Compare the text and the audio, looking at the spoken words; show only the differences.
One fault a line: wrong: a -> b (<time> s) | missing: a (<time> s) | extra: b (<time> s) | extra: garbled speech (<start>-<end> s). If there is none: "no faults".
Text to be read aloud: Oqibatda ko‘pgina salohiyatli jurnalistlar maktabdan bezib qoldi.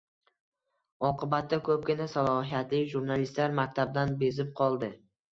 no faults